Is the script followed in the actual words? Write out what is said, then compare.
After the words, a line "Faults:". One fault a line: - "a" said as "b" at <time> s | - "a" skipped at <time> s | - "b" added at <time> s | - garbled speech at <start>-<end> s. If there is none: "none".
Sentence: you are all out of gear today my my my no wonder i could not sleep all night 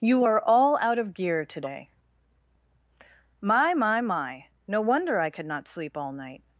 you are all out of gear today my my my no wonder i could not sleep all night
Faults:
none